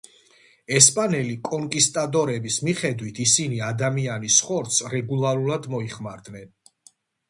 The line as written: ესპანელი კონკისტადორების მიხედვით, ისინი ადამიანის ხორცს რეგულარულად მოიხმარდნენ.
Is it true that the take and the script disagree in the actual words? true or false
false